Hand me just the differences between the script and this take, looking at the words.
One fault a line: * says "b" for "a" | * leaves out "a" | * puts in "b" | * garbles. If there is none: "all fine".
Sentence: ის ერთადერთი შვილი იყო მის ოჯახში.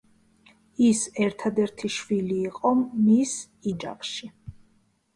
all fine